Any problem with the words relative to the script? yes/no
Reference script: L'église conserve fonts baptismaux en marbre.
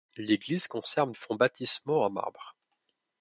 no